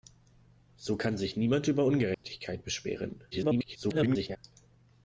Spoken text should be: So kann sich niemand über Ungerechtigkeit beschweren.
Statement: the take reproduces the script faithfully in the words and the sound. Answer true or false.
false